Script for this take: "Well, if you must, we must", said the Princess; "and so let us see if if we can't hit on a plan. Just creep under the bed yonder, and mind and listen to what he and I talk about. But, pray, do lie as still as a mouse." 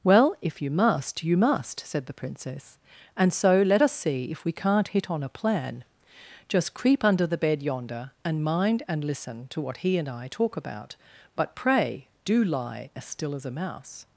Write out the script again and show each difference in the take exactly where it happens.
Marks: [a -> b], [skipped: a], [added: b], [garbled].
"Well, if you must, [we -> you] must", said the Princess; "and so let us see if [skipped: if] we can't hit on a plan. Just creep under the bed yonder, and mind and listen to what he and I talk about. But, pray, do lie as still as a mouse."